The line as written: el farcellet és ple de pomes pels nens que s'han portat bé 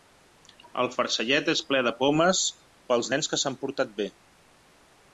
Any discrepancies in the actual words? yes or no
no